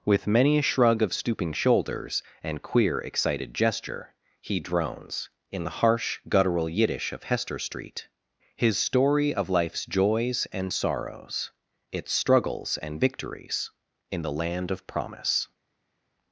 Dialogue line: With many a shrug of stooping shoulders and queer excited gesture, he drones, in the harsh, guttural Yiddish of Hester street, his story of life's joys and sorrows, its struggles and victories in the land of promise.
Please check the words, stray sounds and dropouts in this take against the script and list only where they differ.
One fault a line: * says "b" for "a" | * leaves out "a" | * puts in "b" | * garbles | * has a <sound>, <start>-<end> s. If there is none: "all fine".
all fine